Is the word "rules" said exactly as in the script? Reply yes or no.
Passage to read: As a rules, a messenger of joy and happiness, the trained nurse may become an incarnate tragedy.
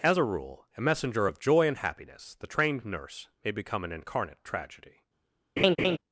no